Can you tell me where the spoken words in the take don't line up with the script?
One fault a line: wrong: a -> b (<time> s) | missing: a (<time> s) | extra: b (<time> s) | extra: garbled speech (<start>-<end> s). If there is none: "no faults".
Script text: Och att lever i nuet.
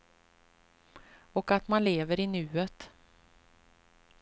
extra: man (1.7 s)